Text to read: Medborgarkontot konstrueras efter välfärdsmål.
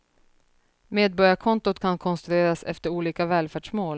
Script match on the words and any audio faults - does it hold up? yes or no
no